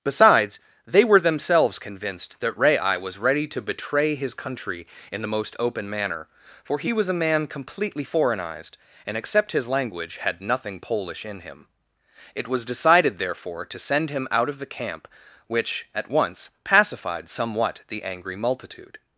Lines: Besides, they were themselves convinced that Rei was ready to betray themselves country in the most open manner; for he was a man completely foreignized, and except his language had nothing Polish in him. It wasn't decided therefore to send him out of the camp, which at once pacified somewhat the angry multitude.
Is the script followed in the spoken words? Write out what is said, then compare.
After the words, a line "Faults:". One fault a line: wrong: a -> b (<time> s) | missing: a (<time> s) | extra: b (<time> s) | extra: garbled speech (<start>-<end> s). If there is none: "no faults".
Besides, they were themselves convinced that Rei was ready to betray his country in the most open manner; for he was a man completely foreignized, and except his language had nothing Polish in him. It was decided therefore to send him out of the camp, which at once pacified somewhat the angry multitude.
Faults:
wrong: themselves -> his (4.2 s)
wrong: wasn't -> was (12.5 s)